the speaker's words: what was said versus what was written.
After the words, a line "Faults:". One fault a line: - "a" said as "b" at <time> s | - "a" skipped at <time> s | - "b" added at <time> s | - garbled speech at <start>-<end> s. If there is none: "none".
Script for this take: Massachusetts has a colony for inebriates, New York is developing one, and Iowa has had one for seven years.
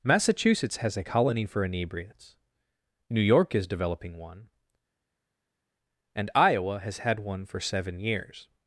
Massachusetts has a colony for inebriates, New York is developing one, and Iowa has had one for seven years.
Faults:
none